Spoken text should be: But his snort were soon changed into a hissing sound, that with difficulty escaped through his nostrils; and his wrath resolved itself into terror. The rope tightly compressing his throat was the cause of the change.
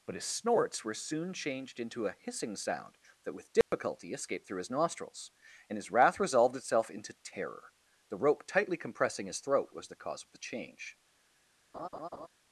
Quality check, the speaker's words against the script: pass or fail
fail